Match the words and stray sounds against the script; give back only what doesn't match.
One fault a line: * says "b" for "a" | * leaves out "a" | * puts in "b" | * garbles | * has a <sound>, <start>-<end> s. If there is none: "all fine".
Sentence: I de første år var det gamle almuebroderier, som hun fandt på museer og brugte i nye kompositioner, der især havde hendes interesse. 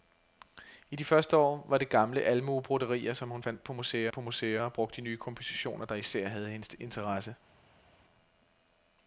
* puts in "på museer"